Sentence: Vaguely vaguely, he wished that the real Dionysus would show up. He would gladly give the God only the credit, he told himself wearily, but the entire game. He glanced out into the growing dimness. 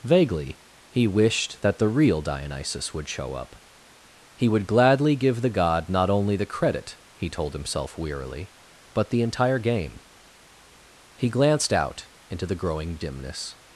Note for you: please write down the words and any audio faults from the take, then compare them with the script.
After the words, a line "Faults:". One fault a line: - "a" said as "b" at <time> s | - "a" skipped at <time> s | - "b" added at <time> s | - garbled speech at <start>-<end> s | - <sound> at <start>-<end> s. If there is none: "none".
Vaguely, he wished that the real Dionysus would show up. He would gladly give the God not only the credit, he told himself wearily, but the entire game. He glanced out into the growing dimness.
Faults:
- "vaguely" skipped at 0.6 s
- "not" added at 5.9 s